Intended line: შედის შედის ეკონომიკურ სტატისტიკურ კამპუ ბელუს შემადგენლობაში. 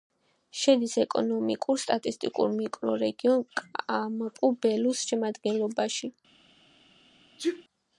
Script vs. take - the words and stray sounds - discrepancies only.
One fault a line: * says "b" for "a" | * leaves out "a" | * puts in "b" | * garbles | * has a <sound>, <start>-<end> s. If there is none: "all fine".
* leaves out "შედის"
* puts in "მიკრორეგიონ"
* has a sneeze, 7.4-7.6 s